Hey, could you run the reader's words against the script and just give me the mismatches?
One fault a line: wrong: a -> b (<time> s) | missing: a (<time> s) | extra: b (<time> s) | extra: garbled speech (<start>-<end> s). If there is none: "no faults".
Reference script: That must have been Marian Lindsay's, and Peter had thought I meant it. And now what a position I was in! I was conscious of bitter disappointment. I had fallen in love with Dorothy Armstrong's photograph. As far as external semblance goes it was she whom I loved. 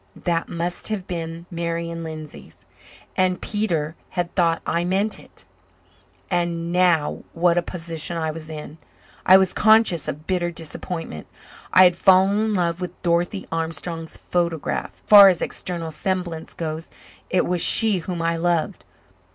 missing: As (15.0 s)